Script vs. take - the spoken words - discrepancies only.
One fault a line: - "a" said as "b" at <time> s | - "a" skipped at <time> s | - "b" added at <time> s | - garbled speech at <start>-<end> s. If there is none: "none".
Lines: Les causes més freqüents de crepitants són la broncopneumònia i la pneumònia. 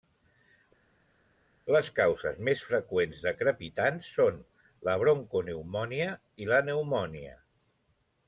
none